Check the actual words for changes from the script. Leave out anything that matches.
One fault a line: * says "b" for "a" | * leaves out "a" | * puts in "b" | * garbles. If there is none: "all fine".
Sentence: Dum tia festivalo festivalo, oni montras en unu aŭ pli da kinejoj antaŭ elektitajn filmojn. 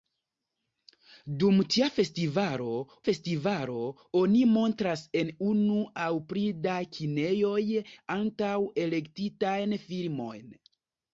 all fine